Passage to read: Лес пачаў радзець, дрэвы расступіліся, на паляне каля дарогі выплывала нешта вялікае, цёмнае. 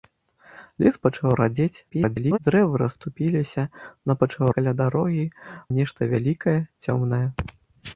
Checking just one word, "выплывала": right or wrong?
wrong